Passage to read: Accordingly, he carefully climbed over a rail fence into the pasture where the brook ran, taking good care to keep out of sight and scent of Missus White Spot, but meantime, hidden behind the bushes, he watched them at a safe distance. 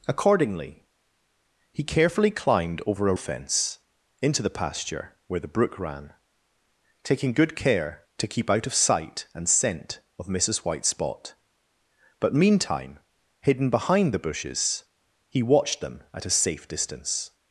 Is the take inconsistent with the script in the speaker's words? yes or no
yes